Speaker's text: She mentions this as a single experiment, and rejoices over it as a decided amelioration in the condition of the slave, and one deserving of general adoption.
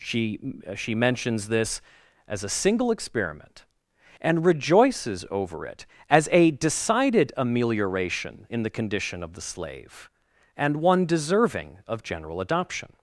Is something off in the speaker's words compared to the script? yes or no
yes